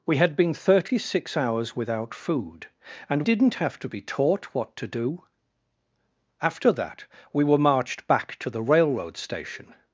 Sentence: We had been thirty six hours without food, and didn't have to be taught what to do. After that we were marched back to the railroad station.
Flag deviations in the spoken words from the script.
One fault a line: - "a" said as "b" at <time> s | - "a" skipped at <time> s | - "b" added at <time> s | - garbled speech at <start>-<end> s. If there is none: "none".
none